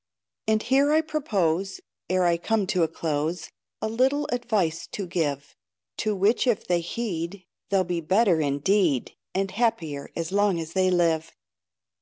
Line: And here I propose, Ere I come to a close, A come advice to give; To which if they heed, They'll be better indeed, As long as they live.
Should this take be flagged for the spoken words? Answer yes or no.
yes